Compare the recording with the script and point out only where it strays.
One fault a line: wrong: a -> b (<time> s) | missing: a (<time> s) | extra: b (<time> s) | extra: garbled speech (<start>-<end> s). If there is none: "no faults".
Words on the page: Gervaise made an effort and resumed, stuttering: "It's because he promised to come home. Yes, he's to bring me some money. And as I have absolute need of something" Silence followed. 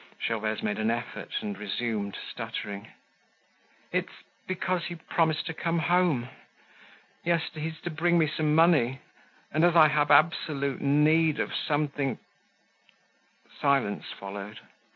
no faults